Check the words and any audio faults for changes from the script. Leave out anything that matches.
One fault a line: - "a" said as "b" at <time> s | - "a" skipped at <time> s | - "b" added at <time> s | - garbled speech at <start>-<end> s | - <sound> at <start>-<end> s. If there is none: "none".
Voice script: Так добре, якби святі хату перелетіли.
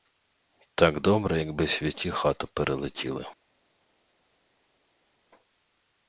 none